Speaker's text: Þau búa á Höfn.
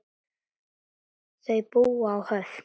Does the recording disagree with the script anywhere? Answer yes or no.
no